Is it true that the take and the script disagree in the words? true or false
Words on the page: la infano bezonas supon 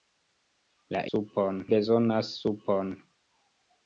true